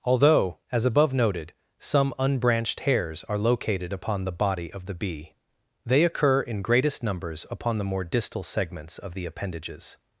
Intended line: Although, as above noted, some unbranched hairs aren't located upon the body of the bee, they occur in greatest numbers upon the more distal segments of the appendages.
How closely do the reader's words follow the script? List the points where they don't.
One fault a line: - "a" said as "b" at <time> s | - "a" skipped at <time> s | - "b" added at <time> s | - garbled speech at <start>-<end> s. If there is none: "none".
- "aren't" said as "are" at 3.2 s